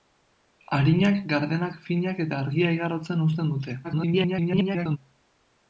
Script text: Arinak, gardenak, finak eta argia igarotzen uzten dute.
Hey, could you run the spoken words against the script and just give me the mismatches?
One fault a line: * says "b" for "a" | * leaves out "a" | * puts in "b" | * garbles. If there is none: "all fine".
* garbles